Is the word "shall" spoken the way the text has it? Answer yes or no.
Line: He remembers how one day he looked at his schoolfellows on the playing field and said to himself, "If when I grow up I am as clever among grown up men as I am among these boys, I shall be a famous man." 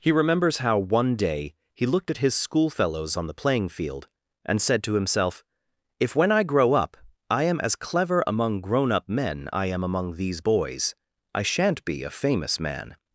no